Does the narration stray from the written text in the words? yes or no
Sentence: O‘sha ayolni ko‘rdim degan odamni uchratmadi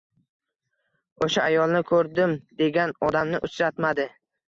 no